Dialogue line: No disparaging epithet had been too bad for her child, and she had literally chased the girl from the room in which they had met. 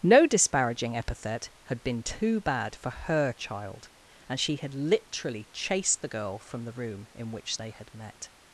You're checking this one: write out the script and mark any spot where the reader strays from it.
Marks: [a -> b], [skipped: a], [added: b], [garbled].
No disparaging epithet had been too bad for her child, and she had literally chased the girl from the room in which they had met.